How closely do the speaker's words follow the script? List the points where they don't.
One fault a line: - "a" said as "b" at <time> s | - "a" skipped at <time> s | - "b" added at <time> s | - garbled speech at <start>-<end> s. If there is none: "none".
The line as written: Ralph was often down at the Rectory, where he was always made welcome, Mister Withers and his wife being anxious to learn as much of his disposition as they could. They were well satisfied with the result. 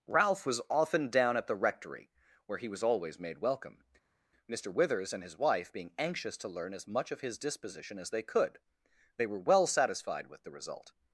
none